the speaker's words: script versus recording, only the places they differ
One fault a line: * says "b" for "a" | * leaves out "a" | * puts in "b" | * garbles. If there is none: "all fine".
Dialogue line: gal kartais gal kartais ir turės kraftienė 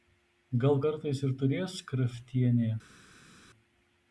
* leaves out "gal kartais"